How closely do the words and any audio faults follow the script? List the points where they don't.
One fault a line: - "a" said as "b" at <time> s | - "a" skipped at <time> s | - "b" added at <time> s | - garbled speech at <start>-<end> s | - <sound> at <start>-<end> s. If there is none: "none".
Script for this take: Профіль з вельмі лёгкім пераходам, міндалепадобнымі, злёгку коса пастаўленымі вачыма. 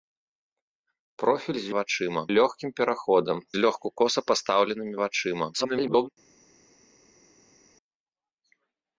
- "вельмі" said as "вачыма" at 1.8 s
- "міндалепадобнымі" skipped at 3.4 s
- garbled speech at 5.5-6.1 s